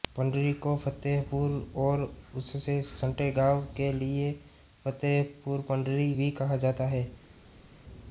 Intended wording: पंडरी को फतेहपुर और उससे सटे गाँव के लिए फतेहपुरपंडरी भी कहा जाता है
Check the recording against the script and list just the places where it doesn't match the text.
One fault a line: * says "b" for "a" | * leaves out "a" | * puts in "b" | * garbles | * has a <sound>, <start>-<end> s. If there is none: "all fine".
all fine